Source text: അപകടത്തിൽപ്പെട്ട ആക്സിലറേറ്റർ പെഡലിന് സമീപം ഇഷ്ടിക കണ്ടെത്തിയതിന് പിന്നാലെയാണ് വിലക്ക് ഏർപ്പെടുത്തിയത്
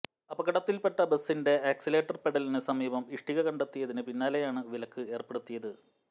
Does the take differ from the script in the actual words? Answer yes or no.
yes